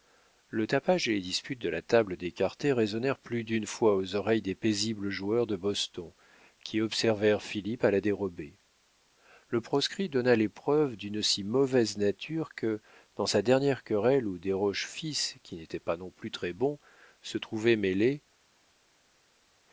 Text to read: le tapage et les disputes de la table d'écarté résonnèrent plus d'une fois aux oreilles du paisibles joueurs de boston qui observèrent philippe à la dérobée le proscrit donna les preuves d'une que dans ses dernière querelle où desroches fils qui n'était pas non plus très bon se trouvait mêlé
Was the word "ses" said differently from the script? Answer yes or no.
yes